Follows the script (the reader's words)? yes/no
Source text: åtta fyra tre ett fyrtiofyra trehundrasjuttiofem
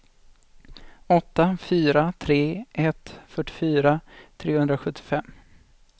yes